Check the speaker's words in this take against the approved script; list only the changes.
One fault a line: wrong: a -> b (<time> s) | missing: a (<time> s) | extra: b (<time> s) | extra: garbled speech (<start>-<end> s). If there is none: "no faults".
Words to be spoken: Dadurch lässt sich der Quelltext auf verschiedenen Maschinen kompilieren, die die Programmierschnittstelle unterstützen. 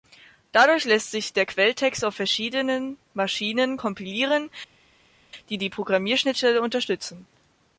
no faults